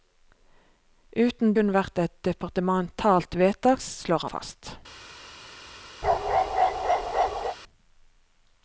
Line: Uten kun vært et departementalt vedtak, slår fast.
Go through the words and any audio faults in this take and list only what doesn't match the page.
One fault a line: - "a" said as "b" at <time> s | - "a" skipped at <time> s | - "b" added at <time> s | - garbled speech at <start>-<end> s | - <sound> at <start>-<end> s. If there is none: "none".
- bark at 6.0-7.6 s